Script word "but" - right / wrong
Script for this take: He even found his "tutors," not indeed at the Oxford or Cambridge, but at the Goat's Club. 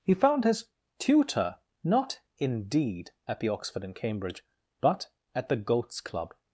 right